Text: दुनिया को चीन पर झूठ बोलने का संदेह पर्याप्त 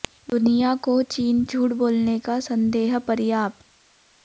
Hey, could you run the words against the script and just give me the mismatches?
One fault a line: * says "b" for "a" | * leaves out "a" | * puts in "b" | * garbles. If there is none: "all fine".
* leaves out "पर"